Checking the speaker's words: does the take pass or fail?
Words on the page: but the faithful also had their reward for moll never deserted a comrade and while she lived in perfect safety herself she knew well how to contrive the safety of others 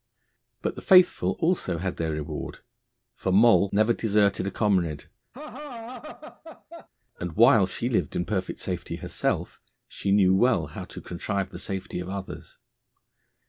pass